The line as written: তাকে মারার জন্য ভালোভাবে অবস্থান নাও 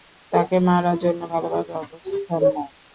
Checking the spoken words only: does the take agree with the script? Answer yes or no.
yes